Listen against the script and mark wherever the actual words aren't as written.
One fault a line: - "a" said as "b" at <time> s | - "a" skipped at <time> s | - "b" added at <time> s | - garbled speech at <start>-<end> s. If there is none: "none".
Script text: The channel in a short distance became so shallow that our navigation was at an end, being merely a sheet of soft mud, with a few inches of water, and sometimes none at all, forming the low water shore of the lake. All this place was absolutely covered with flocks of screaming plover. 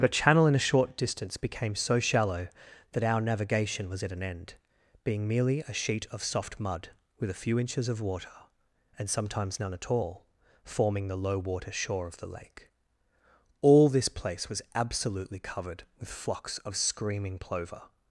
- "The" said as "But a" at 0.0 s